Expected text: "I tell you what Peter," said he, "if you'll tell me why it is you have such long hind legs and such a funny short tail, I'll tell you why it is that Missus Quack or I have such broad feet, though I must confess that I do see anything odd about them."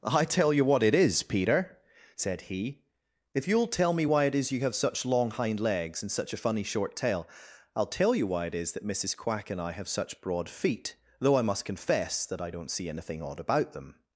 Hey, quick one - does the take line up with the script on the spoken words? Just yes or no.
no